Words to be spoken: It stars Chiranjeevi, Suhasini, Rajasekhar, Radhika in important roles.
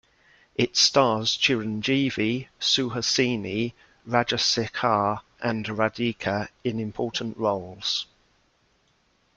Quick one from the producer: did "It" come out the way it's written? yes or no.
yes